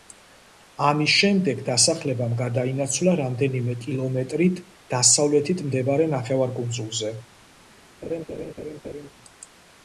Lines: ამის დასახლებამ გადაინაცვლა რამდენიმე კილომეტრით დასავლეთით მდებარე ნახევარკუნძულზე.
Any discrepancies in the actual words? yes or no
yes